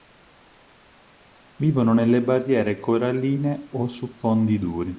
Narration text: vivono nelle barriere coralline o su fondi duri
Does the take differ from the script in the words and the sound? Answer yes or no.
no